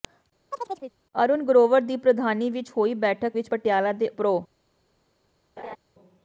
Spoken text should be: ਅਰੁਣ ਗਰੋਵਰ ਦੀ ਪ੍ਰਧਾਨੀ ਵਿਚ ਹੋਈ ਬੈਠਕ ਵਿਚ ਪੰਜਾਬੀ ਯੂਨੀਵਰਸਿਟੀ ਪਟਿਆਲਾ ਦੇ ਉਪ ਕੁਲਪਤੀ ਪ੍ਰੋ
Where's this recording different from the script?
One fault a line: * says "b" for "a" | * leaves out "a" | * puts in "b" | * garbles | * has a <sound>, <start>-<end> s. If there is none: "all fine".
* has a chirp, 0.5-1.0 s
* leaves out "ਪੰਜਾਬੀ ਯੂਨੀਵਰਸਿਟੀ"
* leaves out "ਉਪ ਕੁਲਪਤੀ"
* has a laugh, 5.6-5.8 s